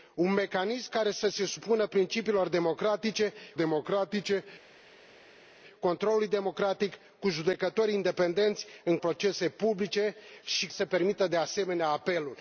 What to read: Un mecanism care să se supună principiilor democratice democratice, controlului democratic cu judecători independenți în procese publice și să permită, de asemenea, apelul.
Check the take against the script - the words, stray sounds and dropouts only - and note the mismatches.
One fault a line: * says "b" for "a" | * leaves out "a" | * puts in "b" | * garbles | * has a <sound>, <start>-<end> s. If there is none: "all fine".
all fine